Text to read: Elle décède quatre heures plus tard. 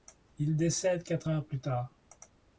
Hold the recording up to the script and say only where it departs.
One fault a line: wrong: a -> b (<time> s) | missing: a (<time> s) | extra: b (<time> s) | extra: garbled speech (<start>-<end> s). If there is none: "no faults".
wrong: Elle -> Il (0.4 s)